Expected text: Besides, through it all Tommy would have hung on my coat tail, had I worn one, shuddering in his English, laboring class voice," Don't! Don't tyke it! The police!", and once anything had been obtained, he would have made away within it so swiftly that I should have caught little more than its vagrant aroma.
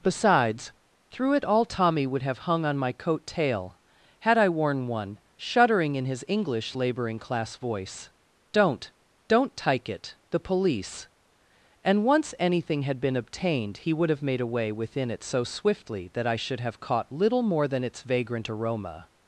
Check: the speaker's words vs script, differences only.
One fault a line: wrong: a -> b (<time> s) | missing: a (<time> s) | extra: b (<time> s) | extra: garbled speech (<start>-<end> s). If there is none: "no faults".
no faults